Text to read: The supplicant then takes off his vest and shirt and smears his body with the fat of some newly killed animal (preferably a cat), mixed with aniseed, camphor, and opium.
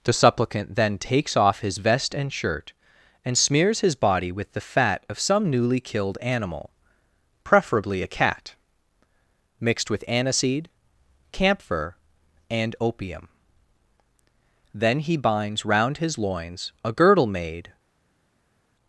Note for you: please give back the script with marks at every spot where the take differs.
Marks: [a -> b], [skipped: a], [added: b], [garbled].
The supplicant then takes off his vest and shirt and smears his body with the fat of some newly killed animal (preferably a cat), mixed with aniseed, camphor, and opium. [added: Then he binds round his loins a girdle made]